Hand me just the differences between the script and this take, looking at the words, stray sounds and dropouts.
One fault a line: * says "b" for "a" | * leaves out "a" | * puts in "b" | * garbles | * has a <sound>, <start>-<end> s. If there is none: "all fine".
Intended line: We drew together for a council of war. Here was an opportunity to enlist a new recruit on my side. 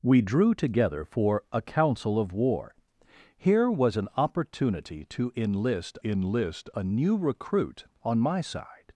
* puts in "enlist"